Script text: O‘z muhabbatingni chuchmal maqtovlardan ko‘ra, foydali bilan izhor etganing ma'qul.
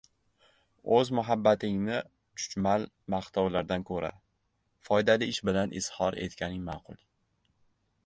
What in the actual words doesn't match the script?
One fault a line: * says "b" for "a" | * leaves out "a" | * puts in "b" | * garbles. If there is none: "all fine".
* puts in "ish"